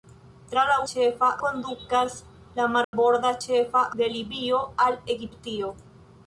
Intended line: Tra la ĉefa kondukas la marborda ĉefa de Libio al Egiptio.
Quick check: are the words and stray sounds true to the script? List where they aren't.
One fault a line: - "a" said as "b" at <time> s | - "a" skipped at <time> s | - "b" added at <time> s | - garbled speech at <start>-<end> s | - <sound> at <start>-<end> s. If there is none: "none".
- dropout at 2.8-2.9 s